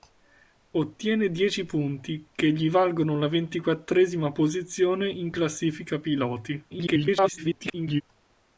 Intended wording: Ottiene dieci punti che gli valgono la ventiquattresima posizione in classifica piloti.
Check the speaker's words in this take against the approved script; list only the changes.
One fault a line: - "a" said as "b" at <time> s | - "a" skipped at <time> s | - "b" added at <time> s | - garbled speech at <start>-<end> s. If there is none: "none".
- garbled speech at 6.7-8.0 s